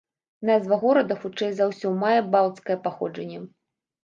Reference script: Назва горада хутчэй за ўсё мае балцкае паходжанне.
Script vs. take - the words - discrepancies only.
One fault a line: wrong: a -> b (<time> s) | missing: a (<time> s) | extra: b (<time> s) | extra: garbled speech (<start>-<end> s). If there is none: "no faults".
no faults